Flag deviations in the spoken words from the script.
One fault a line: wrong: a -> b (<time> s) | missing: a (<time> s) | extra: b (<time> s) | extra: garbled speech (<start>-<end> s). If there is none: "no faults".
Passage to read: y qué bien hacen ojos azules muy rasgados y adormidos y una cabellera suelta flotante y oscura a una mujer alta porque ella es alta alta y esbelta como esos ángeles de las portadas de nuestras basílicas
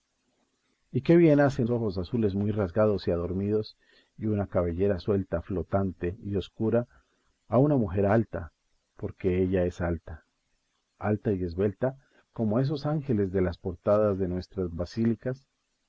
no faults